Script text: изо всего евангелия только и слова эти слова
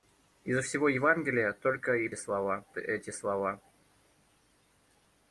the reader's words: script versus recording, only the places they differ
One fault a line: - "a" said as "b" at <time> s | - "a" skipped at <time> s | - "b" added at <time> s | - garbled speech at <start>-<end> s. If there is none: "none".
none